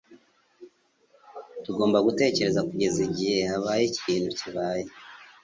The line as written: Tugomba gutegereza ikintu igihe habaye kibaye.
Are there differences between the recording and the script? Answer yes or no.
yes